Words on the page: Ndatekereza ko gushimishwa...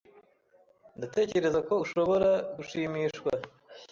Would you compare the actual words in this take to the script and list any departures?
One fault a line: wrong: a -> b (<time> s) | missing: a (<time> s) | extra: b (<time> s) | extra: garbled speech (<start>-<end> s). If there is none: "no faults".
extra: ushobora (1.8 s)